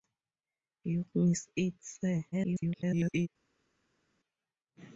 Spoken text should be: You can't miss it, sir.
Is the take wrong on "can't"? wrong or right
wrong